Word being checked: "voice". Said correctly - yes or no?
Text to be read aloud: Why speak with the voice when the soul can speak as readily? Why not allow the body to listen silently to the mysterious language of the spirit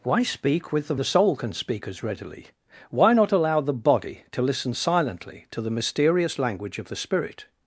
no